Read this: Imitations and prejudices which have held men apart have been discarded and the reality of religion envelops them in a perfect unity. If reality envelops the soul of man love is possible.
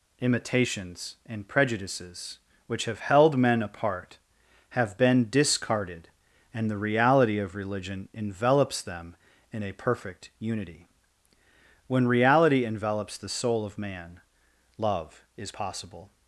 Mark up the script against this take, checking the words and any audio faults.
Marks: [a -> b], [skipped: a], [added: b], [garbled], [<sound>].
Imitations and prejudices which have held men apart have been discarded and the reality of religion envelops them in a perfect unity. [If -> When] reality envelops the soul of man love is possible.